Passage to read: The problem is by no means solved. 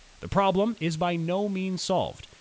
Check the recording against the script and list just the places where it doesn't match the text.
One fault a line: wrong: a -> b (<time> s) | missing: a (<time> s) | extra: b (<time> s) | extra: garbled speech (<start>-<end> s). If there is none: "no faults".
no faults